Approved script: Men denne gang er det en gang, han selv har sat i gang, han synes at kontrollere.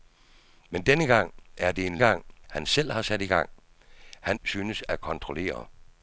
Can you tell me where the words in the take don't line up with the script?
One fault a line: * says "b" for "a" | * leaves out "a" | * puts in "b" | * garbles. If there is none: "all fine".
all fine